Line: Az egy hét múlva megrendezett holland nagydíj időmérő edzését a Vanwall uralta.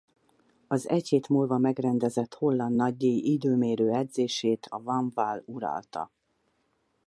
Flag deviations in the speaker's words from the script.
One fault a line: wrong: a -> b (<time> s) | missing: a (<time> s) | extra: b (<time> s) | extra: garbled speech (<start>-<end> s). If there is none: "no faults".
no faults